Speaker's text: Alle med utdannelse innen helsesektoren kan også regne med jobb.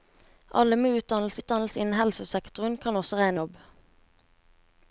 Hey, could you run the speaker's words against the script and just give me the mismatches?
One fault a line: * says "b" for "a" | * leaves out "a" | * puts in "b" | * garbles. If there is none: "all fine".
* puts in "utdannelse"
* leaves out "med"